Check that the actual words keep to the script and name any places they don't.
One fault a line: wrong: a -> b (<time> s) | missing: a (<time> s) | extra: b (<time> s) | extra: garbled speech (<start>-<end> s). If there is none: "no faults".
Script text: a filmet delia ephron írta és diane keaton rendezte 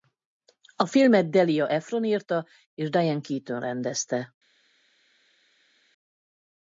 no faults